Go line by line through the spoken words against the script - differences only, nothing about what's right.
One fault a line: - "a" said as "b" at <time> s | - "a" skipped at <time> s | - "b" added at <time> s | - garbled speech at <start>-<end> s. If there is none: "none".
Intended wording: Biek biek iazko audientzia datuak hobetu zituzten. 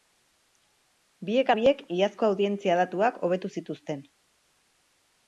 none